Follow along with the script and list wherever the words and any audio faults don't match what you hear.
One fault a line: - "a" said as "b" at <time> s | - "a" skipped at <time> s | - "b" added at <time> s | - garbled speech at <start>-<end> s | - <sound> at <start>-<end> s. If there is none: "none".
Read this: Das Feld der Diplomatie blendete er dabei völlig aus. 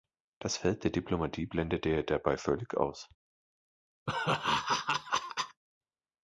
- laugh at 4.1-5.6 s